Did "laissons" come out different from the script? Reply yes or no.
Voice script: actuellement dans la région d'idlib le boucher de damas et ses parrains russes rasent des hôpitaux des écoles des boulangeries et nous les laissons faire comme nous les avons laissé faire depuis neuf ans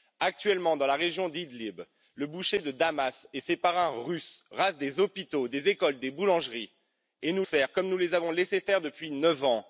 yes